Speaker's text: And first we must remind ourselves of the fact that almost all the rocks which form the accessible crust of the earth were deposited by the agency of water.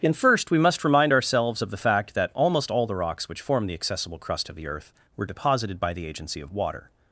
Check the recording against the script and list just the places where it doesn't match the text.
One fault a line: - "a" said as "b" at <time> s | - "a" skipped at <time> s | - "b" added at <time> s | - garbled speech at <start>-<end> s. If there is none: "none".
none